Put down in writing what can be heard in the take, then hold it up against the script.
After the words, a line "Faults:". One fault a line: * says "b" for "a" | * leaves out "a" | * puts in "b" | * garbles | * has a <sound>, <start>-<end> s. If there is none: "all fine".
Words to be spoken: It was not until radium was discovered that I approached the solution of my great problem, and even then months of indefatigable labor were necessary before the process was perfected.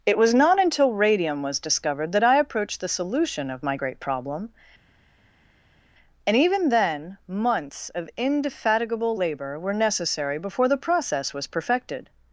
It was not until radium was discovered that I approached the solution of my great problem, and even then months of indefatigable labor were necessary before the process was perfected.
Faults:
all fine